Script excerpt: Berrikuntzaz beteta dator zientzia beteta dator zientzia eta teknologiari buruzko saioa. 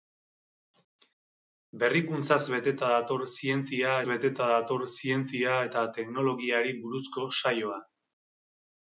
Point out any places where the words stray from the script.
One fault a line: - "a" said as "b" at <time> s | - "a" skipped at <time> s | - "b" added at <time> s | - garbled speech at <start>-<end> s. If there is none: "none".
none